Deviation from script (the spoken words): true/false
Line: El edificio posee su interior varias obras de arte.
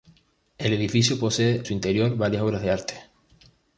false